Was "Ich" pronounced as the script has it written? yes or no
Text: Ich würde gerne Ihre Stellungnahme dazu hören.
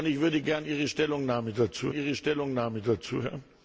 yes